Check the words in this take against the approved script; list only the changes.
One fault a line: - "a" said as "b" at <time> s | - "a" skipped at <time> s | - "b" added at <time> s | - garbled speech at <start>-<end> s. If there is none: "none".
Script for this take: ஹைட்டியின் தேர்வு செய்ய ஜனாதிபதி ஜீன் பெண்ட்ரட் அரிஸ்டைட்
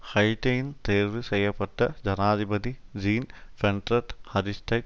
- "பட்ட" added at 1.5 s